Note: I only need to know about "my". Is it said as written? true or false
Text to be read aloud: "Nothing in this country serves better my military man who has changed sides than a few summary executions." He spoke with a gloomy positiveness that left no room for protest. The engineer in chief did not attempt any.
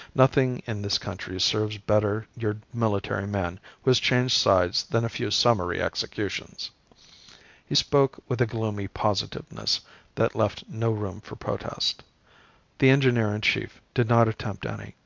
false